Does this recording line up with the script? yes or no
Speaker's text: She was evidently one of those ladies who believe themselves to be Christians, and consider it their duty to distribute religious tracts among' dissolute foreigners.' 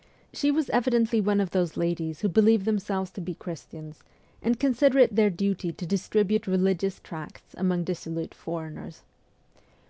yes